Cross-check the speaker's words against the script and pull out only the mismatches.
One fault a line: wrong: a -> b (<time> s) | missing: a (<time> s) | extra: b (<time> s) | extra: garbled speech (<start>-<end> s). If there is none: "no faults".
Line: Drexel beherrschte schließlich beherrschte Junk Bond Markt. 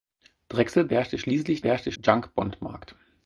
no faults